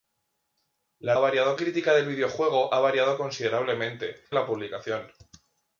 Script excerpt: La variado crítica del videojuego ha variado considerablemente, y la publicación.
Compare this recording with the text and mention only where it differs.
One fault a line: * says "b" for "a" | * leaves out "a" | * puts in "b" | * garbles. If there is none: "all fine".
all fine